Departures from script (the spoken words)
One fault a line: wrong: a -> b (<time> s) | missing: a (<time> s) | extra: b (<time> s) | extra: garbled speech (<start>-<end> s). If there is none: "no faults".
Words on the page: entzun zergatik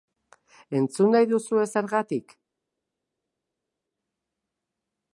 extra: nahi duzue (1.1 s)